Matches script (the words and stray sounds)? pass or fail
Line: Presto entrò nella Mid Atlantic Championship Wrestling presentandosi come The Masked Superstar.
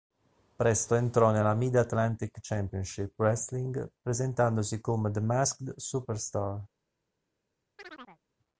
fail